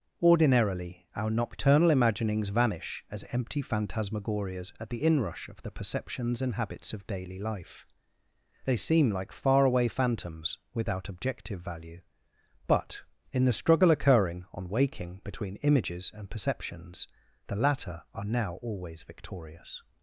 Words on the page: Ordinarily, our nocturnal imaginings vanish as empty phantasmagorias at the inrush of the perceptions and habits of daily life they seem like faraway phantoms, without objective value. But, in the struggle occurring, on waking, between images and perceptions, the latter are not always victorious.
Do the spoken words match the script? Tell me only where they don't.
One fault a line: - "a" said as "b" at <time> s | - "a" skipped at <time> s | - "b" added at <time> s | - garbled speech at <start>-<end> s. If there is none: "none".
- "not" said as "now" at 18.3 s